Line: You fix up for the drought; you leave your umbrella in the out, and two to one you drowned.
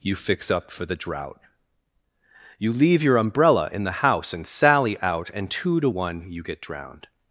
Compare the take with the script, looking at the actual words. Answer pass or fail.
fail